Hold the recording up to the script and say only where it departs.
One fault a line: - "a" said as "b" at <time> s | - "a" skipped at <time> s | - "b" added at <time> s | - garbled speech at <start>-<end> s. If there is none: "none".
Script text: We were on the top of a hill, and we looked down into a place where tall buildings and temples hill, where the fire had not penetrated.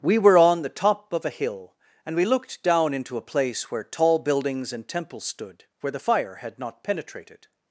- "hill" said as "stood" at 5.2 s